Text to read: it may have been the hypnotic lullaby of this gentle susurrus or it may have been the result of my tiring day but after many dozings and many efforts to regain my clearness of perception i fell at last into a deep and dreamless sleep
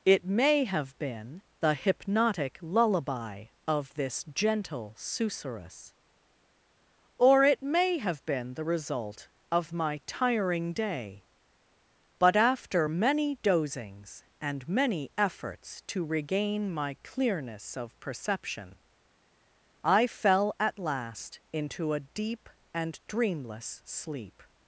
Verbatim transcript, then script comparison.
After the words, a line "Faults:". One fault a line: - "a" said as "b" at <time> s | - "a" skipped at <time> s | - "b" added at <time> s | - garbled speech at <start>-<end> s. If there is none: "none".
it may have been the hypnotic lullaby of this gentle susurrus or it may have been the result of my tiring day but after many dozings and many efforts to regain my clearness of perception i fell at last into a deep and dreamless sleep
Faults:
none